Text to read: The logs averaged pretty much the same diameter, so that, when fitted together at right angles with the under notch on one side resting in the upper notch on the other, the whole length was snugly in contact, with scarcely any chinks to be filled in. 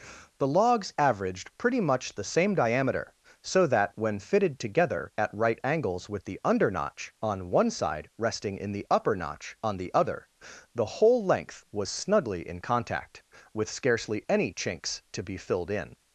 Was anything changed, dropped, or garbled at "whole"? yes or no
no